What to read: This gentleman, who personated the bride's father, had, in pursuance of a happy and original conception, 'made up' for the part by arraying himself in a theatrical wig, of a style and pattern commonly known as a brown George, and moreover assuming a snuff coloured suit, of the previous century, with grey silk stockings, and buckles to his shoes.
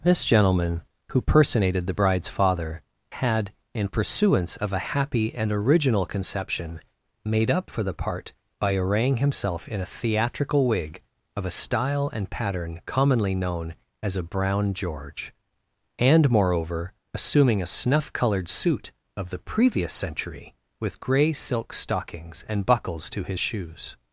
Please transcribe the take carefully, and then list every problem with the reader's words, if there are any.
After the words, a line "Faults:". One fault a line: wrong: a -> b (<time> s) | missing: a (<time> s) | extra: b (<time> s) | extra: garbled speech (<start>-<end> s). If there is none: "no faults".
This gentleman, who personated the bride's father, had, in pursuance of a happy and original conception, 'made up' for the part by arraying himself in a theatrical wig, of a style and pattern commonly known as a brown George, and moreover assuming a snuff coloured suit, of the previous century, with grey silk stockings, and buckles to his shoes.
Faults:
no faults